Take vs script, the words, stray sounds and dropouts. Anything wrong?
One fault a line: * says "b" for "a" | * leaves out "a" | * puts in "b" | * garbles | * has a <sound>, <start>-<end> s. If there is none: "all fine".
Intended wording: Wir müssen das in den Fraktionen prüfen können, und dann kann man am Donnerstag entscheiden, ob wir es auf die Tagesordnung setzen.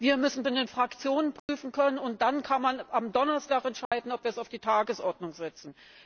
* leaves out "das"
* has a dropout, 1.4-1.5 s
* has a dropout, 3.9-3.9 s